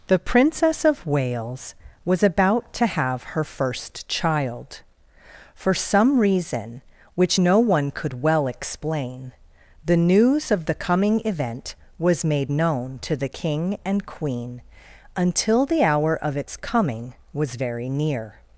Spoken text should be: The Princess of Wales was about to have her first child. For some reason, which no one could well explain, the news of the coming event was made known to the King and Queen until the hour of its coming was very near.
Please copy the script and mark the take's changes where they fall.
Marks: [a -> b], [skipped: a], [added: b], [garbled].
The Princess of Wales was about to have her first child. For some reason, which no one could well explain, the news of the coming event was made known to the King and Queen until the hour of its coming was very near.